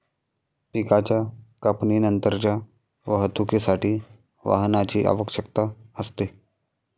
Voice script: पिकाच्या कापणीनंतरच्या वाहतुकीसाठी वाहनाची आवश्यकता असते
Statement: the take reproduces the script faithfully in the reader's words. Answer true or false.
true